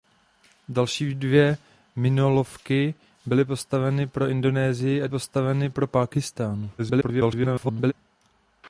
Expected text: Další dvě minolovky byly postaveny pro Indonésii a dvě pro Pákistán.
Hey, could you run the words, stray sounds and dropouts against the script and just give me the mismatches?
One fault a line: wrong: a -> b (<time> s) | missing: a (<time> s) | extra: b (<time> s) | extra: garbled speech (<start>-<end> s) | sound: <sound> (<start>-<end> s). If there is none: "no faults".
wrong: dvě -> postaveny (5.1 s)
extra: garbled speech (6.8-7.9 s)